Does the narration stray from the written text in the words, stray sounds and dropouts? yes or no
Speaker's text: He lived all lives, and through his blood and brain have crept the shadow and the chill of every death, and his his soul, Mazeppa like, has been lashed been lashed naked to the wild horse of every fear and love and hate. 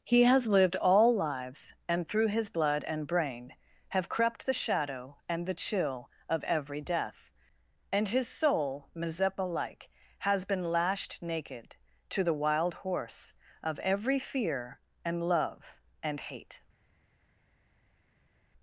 yes